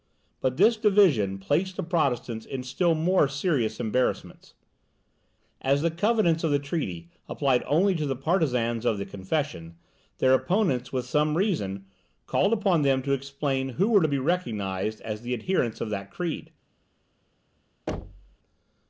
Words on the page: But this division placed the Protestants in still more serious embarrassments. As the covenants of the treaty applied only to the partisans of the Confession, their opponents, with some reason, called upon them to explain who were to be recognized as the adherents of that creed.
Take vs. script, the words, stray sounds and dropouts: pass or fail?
fail